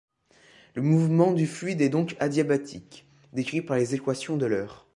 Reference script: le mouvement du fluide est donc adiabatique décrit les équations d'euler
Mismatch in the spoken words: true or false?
true